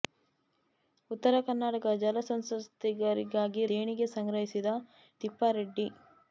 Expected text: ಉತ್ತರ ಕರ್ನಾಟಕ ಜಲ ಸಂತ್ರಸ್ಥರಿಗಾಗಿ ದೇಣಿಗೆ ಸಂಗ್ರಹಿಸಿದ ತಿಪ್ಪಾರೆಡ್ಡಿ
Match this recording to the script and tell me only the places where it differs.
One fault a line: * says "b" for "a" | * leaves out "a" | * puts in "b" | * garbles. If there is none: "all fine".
all fine